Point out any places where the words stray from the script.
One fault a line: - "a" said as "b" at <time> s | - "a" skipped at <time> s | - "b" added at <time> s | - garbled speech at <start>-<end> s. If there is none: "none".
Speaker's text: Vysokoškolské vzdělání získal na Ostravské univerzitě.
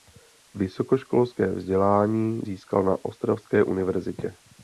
none